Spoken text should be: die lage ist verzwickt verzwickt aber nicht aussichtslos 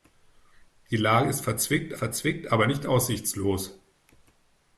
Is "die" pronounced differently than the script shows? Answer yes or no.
no